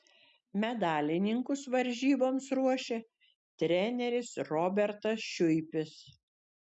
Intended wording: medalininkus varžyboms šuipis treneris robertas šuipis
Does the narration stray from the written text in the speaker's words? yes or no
yes